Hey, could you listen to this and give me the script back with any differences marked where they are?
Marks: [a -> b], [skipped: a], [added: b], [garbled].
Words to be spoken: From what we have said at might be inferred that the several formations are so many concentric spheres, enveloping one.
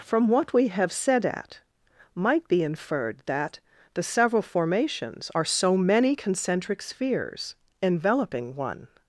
From what we have said at might be inferred that the several formations are so many concentric spheres, enveloping one.